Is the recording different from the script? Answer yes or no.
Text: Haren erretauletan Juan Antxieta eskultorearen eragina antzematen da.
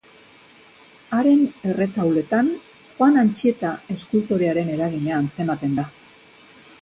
no